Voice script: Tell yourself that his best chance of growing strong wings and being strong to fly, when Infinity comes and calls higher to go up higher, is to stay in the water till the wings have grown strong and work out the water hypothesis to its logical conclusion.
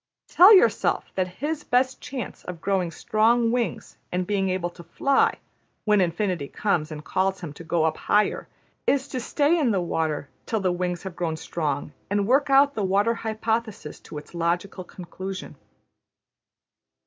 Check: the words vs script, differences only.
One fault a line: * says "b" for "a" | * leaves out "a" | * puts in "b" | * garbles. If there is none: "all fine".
* says "able" for "strong"
* says "him" for "higher"